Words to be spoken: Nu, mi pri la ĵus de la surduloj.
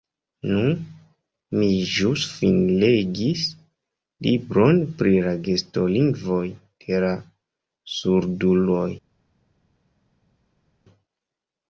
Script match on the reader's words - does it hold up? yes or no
no